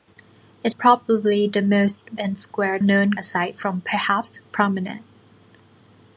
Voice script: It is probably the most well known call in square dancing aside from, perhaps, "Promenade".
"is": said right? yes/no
no